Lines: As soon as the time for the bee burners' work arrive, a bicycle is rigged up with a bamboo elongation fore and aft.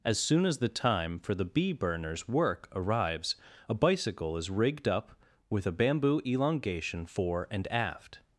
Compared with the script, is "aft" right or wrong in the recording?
right